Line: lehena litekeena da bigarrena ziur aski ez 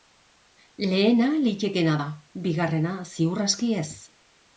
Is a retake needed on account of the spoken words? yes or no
no